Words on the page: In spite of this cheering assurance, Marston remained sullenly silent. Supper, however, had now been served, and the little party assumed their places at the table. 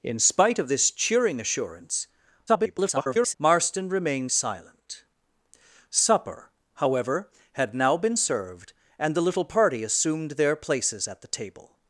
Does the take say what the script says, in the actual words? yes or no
no